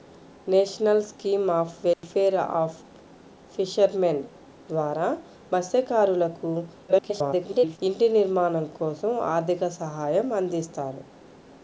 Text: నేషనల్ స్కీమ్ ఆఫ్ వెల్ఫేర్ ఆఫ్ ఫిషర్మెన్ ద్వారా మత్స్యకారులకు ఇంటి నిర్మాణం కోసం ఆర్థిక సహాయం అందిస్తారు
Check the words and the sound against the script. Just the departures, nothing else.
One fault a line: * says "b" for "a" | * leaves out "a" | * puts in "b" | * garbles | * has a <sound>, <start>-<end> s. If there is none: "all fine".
* has a dropout, 1.9-2.0 s
* garbles